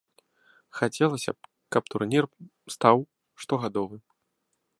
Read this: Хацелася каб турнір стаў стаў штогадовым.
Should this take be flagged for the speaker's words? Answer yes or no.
yes